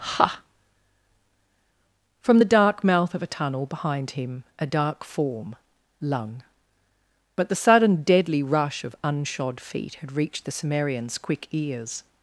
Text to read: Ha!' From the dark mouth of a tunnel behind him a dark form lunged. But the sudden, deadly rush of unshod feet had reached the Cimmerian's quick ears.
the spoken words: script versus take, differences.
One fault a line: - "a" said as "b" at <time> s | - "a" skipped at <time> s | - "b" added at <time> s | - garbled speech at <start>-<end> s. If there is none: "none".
- "lunged" said as "lung" at 6.0 s